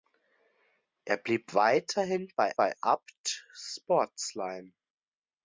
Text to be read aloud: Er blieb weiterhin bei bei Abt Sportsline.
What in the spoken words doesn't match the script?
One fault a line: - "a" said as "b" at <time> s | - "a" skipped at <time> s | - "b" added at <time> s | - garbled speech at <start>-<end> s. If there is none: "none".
none